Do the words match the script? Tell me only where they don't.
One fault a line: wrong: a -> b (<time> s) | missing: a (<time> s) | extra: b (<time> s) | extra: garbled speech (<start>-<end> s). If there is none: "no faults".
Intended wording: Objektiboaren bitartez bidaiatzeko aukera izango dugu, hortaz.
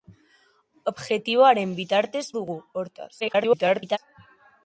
missing: bidaiatzeko aukera izango (2.2 s)
extra: garbled speech (3.2-4.0 s)